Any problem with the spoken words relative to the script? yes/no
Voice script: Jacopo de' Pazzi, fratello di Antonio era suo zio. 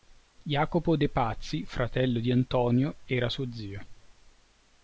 no